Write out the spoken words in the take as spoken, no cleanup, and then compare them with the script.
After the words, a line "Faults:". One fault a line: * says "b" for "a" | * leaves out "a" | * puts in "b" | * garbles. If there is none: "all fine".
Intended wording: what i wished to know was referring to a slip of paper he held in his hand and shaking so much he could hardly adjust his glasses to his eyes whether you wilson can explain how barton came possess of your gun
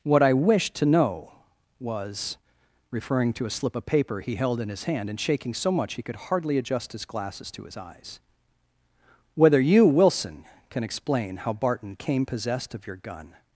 what i wished to know was referring to a slip of paper he held in his hand and shaking so much he could hardly adjust his glasses to his eyes whether you wilson can explain how barton came possessed of your gun
Faults:
* says "possessed" for "possess"